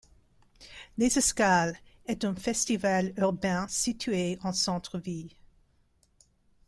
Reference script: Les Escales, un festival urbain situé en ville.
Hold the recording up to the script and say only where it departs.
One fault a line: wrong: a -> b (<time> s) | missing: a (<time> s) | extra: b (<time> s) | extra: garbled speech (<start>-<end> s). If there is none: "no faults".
extra: est (2.0 s)
extra: centre (4.5 s)